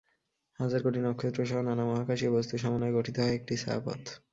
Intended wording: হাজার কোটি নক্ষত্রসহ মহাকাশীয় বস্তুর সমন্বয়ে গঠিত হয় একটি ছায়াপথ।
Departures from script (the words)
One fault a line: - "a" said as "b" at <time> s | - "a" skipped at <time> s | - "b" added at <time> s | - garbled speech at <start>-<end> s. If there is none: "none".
- "নানা" added at 1.6 s